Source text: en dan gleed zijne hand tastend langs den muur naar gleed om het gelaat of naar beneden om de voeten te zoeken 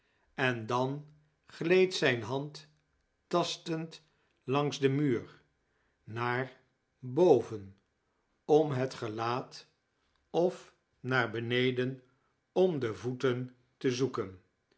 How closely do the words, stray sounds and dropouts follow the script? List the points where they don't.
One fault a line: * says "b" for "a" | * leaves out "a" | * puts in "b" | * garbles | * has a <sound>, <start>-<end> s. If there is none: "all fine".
* says "boven" for "gleed"